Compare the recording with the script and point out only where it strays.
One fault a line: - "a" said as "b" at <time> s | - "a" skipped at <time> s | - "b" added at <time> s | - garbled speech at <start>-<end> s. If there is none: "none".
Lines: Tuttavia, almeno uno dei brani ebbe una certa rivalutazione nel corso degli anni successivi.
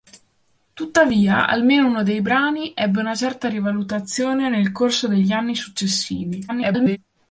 - garbled speech at 6.5-7.0 s